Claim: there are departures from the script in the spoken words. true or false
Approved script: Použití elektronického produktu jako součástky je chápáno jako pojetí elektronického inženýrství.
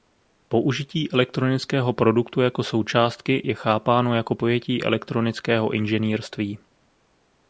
false